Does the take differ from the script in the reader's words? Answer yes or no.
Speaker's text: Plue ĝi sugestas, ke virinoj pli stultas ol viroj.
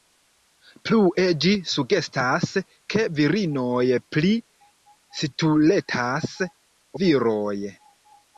yes